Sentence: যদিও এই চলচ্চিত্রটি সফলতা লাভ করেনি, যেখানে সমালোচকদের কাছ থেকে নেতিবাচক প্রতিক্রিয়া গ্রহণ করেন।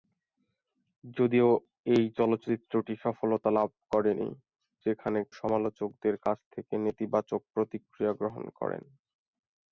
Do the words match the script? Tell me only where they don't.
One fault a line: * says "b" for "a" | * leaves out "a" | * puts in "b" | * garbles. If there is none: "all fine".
all fine